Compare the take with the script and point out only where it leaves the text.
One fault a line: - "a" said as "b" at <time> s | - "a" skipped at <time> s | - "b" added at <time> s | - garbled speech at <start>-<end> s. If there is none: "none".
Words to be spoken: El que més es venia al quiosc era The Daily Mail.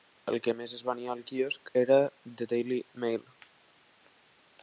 none